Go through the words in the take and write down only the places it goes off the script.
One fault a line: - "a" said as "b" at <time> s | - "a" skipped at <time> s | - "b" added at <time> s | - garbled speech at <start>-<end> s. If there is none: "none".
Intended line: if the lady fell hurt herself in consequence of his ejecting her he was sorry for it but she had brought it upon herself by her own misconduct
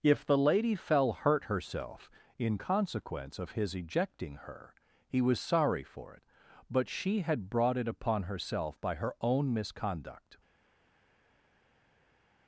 none